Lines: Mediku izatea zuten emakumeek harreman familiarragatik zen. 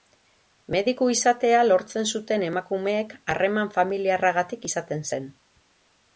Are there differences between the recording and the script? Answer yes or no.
yes